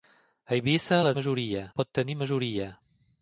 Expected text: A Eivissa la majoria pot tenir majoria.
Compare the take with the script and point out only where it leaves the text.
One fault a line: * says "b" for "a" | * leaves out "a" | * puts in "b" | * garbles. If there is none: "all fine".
all fine